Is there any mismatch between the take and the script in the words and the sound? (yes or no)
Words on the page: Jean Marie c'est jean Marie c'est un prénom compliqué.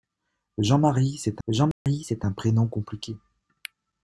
yes